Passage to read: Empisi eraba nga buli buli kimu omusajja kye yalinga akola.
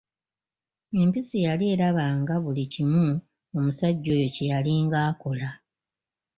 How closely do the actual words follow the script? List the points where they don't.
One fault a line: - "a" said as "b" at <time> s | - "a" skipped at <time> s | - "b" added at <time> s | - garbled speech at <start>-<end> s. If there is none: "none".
- "yali" added at 1.4 s
- "buli" skipped at 2.6 s
- "oyo" added at 4.2 s